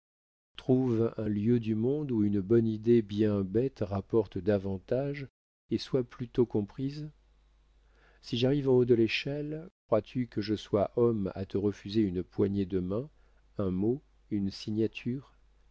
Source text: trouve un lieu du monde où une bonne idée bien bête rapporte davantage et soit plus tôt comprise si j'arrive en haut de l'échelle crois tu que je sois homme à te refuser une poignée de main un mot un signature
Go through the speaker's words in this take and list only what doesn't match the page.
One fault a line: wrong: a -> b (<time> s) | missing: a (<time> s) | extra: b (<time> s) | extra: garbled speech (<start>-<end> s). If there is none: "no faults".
wrong: un -> une (14.3 s)